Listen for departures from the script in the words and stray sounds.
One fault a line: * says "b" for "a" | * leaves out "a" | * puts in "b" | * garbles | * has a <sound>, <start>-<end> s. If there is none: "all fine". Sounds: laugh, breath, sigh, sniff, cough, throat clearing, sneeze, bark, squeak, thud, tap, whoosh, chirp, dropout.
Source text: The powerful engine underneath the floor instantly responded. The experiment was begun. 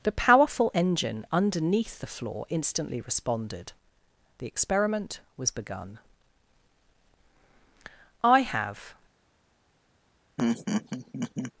* puts in "I have"
* has a laugh, 10.4-11.5 s